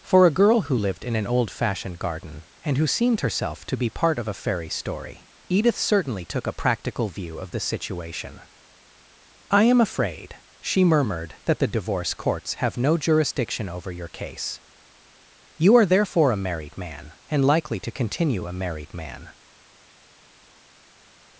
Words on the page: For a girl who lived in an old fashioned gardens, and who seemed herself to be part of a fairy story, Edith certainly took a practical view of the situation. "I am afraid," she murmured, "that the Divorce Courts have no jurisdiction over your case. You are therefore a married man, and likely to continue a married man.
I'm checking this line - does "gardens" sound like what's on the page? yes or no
no